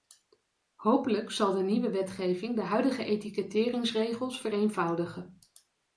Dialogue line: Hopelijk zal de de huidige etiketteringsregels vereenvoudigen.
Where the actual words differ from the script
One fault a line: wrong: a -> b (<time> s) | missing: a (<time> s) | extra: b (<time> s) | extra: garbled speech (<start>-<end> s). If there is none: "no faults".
extra: nieuwe wetgeving (1.6 s)